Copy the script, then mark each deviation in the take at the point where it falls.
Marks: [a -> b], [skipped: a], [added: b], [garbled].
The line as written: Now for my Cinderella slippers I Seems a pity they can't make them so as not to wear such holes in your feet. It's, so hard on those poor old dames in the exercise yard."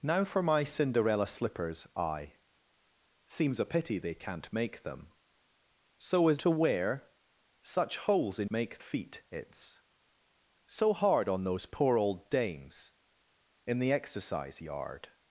Now for my Cinderella slippers I Seems a pity they can't make them so as [skipped: not] to wear such holes in [your -> make] feet. It's, so hard on those poor old dames in the exercise yard."